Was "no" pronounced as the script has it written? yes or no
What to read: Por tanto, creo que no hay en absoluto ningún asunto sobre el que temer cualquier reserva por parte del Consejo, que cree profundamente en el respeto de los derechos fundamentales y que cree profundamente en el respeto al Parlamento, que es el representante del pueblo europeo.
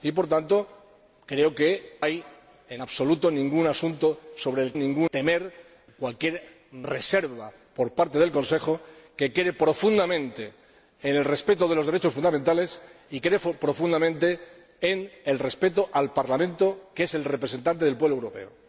no